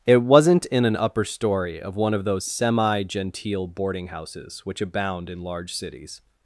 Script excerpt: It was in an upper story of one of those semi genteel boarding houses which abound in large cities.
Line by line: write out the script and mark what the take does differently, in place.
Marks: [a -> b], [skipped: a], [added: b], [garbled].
It [was -> wasn't] in an upper story of one of those semi genteel boarding houses which abound in large cities.